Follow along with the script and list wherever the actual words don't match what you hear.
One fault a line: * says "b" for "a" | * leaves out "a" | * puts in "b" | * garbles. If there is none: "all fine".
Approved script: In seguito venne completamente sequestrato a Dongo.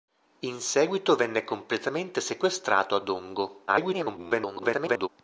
* garbles